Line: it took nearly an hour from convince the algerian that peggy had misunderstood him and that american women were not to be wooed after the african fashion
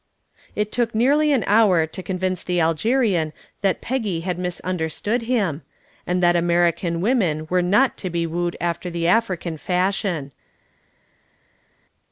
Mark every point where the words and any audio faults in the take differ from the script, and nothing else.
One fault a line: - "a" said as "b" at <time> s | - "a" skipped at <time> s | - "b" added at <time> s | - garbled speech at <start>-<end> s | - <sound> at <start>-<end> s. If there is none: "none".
- "from" said as "to" at 1.9 s